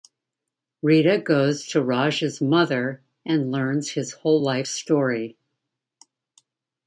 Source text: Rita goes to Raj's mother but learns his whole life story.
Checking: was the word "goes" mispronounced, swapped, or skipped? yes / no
no